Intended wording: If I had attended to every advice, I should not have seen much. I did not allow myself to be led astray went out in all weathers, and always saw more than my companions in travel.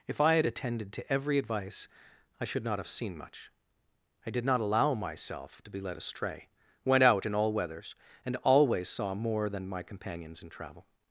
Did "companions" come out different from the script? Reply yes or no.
no